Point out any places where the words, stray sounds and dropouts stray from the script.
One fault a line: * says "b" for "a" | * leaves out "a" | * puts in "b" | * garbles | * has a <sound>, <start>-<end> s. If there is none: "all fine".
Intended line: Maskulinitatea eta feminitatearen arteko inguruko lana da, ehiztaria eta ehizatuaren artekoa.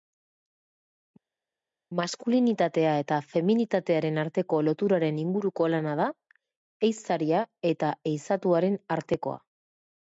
* puts in "loturaren"